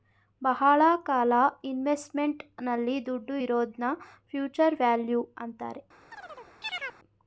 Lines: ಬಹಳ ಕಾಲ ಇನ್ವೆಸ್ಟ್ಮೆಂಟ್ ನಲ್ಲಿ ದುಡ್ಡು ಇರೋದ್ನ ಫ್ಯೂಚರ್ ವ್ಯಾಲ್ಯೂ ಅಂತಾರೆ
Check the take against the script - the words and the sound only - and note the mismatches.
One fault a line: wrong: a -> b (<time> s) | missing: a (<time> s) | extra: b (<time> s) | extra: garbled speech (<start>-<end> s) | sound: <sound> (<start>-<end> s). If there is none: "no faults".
sound: chirp (6.1-7.0 s)